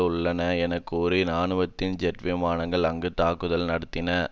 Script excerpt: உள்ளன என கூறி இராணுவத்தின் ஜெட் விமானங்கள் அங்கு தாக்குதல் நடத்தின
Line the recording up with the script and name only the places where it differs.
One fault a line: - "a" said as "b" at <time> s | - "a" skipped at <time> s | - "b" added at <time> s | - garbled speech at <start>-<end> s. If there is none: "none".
none